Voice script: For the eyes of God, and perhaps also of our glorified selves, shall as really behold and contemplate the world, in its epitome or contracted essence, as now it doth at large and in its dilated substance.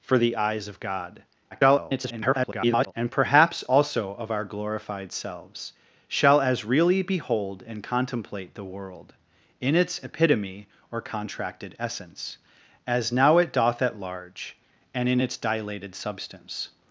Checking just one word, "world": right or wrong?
right